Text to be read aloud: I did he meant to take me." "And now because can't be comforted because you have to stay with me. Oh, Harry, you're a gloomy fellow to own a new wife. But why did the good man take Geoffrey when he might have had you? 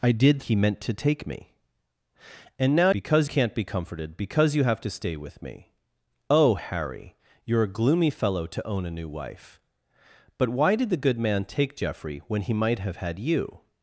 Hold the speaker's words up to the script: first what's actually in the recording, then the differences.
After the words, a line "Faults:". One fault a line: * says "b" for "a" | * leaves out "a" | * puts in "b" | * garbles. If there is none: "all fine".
I did he meant to take me." "And now because can't be comforted because you have to stay with me. Oh, Harry, you're a gloomy fellow to own a new wife. But why did the good man take Geoffrey when he might have had you?
Faults:
all fine